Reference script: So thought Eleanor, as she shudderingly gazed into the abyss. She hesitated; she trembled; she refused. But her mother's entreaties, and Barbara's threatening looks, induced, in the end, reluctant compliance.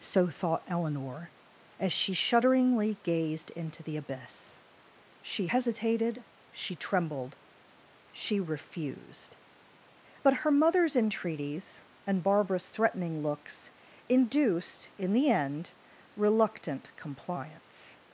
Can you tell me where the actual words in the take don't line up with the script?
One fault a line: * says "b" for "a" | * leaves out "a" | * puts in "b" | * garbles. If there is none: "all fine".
all fine